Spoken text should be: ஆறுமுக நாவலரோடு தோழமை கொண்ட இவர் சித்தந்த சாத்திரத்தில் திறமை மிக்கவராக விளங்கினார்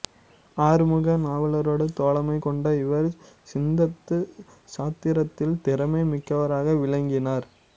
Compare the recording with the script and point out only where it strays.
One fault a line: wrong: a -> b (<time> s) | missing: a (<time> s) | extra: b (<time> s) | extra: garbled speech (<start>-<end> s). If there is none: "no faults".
no faults